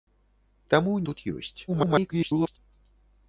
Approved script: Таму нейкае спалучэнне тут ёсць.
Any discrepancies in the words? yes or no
yes